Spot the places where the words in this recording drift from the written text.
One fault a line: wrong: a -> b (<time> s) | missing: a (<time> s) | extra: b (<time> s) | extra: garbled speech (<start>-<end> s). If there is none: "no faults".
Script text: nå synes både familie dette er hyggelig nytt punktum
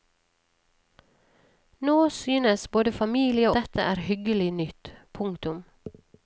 no faults